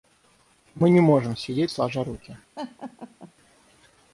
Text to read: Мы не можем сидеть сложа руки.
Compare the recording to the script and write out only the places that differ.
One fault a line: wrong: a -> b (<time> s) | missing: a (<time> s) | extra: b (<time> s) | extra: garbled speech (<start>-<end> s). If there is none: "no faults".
no faults